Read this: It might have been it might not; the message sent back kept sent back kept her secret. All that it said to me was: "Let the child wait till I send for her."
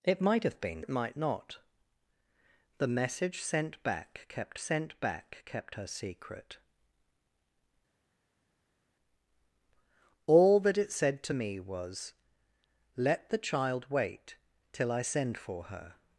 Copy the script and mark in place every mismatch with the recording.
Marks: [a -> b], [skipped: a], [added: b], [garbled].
It might have been it might not; the message sent back kept sent back kept her secret. All that it said to me was: "Let the child wait till I send for her."